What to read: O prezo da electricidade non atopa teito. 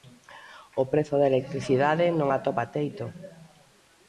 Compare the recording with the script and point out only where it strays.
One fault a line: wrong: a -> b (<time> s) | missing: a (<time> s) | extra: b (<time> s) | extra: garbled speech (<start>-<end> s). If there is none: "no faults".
no faults